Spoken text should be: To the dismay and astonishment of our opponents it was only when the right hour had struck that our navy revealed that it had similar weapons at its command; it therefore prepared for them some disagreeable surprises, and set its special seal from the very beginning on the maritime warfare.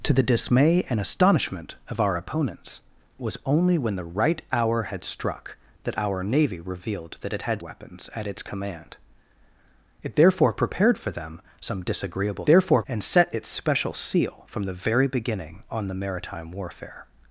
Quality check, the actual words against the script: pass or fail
fail